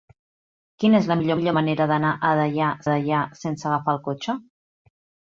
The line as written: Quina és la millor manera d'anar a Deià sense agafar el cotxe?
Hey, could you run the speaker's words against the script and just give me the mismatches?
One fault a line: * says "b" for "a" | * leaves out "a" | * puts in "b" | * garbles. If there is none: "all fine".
* puts in "millor"
* puts in "Deià"